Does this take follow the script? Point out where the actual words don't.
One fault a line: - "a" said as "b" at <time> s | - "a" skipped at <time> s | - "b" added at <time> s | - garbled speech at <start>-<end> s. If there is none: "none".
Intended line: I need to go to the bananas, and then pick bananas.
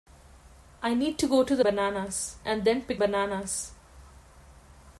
none